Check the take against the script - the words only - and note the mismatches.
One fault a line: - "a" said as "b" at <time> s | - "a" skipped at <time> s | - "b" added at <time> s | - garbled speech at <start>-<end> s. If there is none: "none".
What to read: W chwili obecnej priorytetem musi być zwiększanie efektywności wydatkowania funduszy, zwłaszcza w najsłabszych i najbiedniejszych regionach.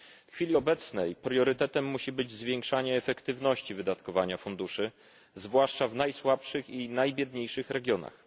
none